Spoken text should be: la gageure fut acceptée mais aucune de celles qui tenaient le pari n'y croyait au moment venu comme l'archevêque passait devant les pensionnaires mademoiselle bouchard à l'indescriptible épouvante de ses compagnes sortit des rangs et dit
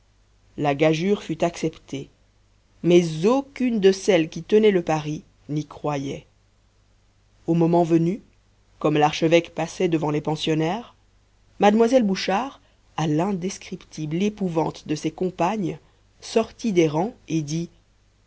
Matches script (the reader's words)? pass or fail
pass